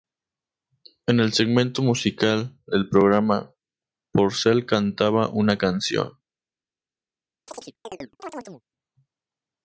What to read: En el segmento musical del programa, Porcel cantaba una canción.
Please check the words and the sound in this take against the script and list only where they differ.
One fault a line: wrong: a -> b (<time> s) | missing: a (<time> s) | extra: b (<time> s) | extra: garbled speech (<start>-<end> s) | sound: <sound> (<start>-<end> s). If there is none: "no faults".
sound: chirp (7.5-8.6 s)